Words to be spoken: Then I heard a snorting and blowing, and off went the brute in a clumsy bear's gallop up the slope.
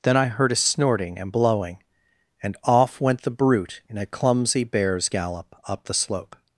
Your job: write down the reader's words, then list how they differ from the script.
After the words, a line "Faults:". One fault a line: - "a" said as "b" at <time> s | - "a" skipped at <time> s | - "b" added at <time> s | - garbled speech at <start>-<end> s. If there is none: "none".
Then I heard a snorting and blowing, and off went the brute in a clumsy bear's gallop up the slope.
Faults:
none